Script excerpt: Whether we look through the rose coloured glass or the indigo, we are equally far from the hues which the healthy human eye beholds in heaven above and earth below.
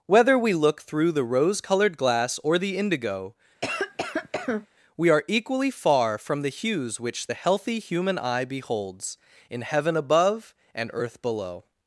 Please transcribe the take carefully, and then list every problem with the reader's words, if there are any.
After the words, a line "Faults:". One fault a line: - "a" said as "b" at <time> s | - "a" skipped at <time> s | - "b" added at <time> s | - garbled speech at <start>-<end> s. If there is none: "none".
Whether we look through the rose coloured glass or the indigo, we are equally far from the hues which the healthy human eye beholds in heaven above and earth below.
Faults:
none